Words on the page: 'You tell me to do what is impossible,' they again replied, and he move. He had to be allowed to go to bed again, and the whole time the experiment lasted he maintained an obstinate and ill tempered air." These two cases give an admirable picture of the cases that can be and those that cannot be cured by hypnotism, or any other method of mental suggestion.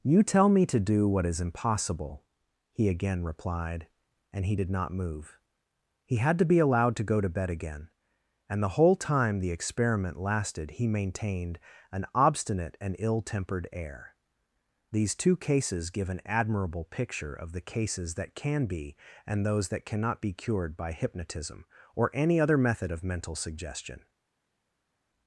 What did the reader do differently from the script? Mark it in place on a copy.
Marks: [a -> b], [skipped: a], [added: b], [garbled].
'You tell me to do what is impossible,' [they -> he] again replied, and he [added: did not] move. He had to be allowed to go to bed again, and the whole time the experiment lasted he maintained an obstinate and ill tempered air." These two cases give an admirable picture of the cases that can be and those that cannot be cured by hypnotism, or any other method of mental suggestion.